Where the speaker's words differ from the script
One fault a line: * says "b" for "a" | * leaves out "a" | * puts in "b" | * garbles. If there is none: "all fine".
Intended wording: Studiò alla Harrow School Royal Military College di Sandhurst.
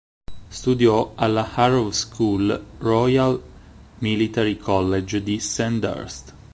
all fine